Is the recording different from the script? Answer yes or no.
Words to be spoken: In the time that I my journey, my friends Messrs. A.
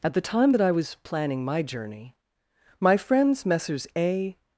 yes